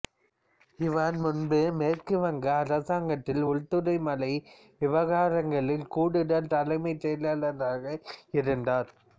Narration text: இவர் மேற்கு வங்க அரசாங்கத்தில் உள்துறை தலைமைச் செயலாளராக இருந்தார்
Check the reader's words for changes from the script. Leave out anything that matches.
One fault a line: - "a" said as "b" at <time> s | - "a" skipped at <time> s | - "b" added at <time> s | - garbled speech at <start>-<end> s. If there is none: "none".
- "முன்பு" added at 1.2 s
- "மலை விவகாரங்களில் கூடுதல்" added at 4.1 s